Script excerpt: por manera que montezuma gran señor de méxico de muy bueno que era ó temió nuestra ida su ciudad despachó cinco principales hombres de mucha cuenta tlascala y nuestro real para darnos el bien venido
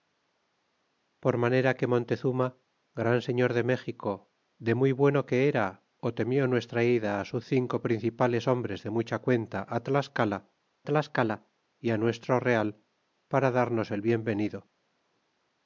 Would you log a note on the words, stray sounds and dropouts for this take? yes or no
yes